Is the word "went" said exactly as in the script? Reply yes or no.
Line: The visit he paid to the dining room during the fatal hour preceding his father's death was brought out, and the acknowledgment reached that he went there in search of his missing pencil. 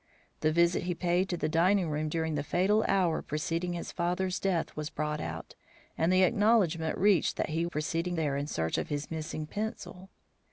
no